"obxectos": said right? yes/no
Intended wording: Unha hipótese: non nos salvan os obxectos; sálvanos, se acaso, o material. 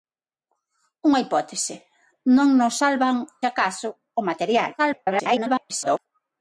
no